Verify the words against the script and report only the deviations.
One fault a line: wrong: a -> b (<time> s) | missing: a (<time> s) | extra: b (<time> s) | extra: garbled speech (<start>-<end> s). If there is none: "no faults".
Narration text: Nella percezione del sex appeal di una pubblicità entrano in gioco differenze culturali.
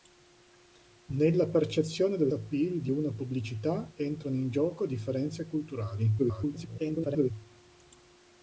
missing: sex (2.3 s)
extra: garbled speech (6.2-7.3 s)